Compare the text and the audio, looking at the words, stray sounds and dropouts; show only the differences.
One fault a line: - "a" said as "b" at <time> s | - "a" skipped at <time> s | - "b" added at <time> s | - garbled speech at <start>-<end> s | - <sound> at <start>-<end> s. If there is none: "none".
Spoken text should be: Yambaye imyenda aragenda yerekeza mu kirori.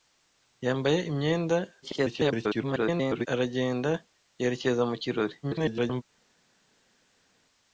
- garbled speech at 1.8-3.3 s
- garbled speech at 5.4-6.0 s